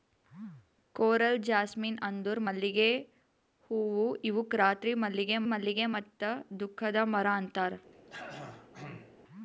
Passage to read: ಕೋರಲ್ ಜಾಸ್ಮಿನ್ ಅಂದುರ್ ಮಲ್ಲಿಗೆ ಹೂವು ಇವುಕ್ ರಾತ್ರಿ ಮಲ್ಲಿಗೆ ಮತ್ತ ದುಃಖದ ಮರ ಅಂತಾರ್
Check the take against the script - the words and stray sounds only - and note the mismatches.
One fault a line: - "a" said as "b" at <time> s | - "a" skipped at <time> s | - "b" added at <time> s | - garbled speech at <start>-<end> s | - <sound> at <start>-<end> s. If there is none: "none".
- "ಮಲ್ಲಿಗೆ" added at 5.5 s
- throat clearing at 7.9-9.2 s